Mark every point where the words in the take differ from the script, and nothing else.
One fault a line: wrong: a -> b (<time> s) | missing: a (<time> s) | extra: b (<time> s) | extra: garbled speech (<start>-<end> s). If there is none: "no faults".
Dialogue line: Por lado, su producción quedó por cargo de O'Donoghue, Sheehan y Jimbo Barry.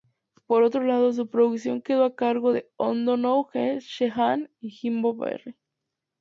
extra: otro (0.6 s)
wrong: por -> a (2.0 s)